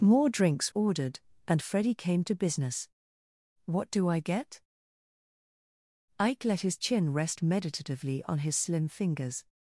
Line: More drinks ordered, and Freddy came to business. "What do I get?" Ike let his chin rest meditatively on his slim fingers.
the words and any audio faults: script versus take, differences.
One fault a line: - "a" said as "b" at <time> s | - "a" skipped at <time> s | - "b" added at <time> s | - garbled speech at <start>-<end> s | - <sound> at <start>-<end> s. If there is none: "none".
none